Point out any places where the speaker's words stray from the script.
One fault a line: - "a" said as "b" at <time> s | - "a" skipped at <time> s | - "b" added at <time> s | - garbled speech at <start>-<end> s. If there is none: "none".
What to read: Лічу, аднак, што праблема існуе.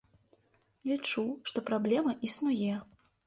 - "аднак" skipped at 1.2 s